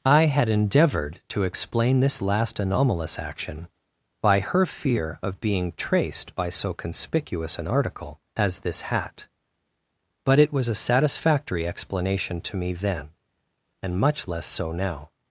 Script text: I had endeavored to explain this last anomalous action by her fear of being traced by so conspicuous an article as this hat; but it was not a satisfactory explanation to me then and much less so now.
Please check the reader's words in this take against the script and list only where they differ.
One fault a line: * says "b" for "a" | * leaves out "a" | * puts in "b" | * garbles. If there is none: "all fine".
* leaves out "not"